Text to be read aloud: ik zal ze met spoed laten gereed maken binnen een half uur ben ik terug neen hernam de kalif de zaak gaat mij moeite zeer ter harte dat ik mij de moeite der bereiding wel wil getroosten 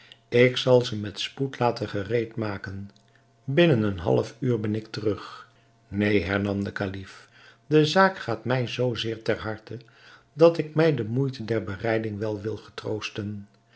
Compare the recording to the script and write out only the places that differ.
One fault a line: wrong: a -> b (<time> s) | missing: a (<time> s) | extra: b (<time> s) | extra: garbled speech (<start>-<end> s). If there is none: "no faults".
wrong: moeite -> zoo (8.7 s)